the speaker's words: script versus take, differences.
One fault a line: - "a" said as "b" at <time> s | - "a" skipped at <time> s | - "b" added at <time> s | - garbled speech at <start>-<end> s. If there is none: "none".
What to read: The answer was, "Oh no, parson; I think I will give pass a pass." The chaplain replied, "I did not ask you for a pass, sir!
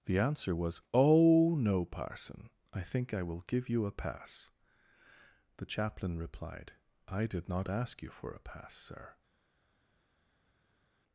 - "pass" said as "you" at 3.7 s